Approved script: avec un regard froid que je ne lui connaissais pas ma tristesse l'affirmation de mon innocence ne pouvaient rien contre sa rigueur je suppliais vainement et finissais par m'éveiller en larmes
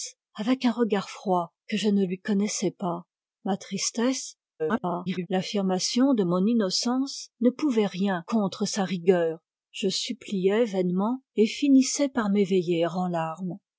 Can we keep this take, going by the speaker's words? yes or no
no